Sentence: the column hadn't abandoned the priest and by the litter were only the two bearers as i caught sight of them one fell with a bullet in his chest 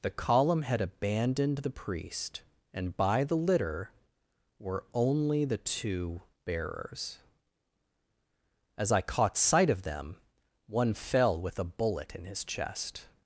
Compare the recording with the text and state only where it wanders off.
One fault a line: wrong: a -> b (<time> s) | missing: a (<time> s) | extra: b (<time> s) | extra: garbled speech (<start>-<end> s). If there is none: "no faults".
wrong: hadn't -> had (0.6 s)